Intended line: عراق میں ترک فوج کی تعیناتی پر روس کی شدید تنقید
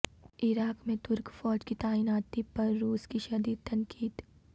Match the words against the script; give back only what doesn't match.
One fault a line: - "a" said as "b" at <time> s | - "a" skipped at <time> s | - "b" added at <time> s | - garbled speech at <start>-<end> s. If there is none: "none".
none